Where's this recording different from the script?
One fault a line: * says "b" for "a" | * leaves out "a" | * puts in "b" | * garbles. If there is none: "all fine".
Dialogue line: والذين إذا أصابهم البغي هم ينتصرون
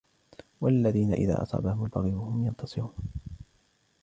all fine